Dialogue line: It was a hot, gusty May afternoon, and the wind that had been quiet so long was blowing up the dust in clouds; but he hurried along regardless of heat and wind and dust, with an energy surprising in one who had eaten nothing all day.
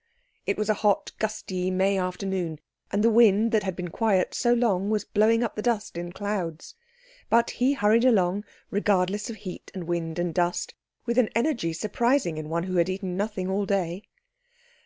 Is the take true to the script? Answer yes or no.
yes